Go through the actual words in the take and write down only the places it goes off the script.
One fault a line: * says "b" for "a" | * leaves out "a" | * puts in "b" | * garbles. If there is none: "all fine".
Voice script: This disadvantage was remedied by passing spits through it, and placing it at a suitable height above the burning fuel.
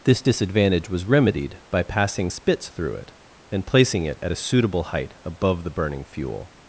all fine